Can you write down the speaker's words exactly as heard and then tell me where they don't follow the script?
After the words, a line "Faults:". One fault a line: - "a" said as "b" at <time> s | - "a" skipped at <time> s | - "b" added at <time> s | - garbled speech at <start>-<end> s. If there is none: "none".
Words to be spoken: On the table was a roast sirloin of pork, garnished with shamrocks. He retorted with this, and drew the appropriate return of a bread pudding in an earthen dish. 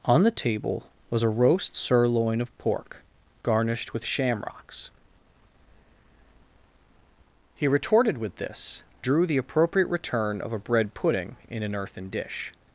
On the table was a roast sirloin of pork, garnished with shamrocks. He retorted with this, drew the appropriate return of a bread pudding in an earthen dish.
Faults:
- "and" skipped at 8.8 s